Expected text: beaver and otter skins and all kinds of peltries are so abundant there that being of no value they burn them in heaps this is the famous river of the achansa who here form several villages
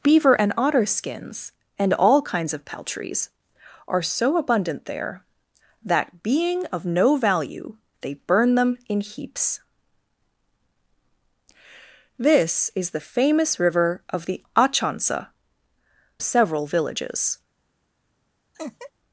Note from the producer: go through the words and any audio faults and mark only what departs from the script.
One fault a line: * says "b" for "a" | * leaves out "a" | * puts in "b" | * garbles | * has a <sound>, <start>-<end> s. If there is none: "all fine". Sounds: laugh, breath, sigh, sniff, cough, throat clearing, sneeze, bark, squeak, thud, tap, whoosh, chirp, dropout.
* leaves out "who here form"
* has a laugh, 18.5-18.9 s